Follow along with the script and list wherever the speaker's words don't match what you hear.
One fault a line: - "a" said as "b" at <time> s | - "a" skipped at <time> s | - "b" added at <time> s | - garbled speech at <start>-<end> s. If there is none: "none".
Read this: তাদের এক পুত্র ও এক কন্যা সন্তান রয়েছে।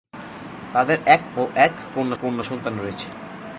- "পুত্র" skipped at 1.2 s
- "কন্যা" added at 2.2 s